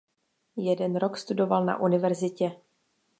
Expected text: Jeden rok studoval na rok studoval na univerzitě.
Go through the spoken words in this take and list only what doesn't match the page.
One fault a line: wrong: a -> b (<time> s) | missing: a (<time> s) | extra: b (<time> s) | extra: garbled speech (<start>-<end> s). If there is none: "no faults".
missing: rok studoval na (1.8 s)